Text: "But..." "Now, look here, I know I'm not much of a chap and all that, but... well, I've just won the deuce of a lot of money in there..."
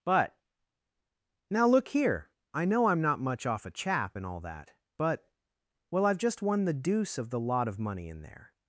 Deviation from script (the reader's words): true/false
true